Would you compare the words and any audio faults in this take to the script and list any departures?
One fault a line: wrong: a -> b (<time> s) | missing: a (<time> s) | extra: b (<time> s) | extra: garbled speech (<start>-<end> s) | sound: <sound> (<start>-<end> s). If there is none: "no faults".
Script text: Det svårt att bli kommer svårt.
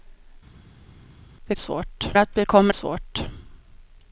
no faults